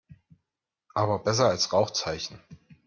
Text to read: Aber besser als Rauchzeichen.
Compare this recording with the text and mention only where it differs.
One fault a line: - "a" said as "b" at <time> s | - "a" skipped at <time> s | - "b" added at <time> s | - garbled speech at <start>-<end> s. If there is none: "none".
none